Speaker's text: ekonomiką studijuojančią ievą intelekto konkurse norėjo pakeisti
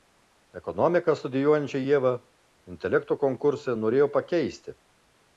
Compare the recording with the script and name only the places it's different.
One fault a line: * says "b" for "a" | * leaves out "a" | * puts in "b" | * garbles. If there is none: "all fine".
all fine